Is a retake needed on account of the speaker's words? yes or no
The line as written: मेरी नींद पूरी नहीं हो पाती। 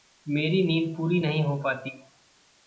no